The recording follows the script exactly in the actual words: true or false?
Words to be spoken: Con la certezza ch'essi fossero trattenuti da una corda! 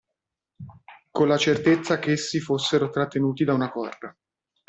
true